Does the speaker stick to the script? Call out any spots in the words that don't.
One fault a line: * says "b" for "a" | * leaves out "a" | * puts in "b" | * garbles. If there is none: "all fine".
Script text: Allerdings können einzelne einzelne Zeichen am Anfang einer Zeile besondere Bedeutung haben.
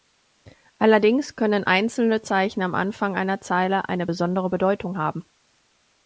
* leaves out "einzelne"
* puts in "eine"